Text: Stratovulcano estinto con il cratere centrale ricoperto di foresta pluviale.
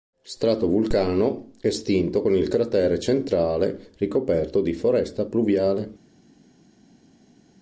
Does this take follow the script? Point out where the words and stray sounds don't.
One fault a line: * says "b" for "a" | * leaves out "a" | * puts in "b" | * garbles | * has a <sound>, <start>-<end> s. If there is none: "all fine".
all fine